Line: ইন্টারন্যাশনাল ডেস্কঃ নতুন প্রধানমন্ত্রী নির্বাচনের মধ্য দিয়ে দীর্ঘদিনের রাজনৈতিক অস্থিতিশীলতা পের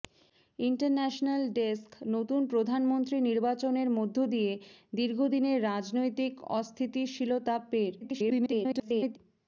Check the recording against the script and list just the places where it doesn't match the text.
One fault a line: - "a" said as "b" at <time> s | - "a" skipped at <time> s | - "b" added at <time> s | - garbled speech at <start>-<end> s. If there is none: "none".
- garbled speech at 8.0-9.2 s